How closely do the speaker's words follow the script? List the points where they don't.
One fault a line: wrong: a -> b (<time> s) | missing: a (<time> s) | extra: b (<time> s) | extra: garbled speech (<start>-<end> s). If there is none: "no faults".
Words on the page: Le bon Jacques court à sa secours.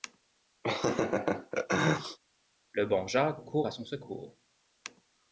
wrong: sa -> son (3.7 s)